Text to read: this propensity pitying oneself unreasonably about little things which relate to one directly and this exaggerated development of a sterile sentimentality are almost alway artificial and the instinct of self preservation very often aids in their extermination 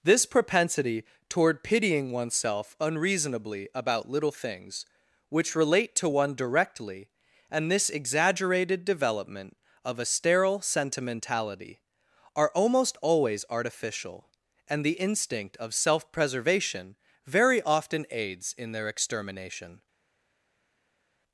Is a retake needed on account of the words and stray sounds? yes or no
yes